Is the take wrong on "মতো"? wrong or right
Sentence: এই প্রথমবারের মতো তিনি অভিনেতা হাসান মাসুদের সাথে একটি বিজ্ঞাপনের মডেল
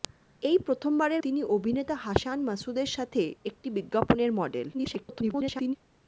wrong